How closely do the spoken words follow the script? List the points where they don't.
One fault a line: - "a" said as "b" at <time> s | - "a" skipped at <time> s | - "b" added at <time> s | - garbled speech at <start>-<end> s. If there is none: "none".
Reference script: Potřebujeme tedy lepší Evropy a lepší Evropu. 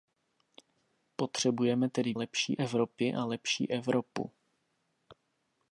none